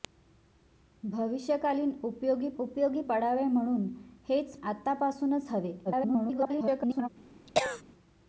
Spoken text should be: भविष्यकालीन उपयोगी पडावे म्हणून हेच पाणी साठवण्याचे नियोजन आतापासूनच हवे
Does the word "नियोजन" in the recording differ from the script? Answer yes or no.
yes